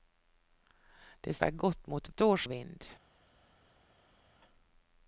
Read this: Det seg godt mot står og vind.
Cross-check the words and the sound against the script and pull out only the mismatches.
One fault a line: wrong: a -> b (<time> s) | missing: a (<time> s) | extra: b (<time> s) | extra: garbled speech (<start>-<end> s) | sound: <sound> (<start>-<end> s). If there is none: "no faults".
no faults